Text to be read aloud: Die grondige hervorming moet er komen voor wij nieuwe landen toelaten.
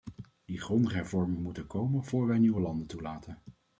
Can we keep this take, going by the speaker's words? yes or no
yes